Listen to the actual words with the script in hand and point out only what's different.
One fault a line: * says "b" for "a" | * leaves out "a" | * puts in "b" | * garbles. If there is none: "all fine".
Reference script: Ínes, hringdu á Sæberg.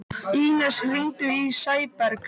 * says "í" for "á"